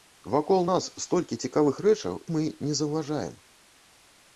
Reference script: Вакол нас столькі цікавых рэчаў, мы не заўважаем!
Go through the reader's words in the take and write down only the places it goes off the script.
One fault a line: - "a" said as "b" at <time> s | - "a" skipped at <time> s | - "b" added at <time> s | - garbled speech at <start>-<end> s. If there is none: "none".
none